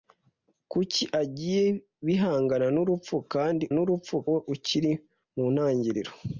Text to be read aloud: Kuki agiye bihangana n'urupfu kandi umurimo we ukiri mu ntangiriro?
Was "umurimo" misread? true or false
true